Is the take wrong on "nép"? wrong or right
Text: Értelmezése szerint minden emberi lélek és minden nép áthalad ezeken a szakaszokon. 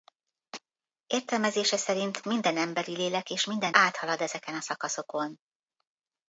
wrong